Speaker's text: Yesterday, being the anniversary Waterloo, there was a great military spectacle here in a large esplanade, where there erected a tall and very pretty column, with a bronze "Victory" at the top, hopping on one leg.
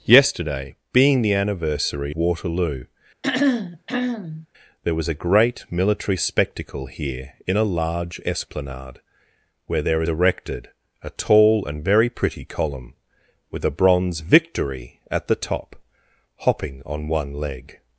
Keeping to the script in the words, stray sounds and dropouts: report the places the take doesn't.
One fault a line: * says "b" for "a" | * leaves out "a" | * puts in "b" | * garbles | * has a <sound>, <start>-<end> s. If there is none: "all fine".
* has a throat clearing, 3.2-4.5 s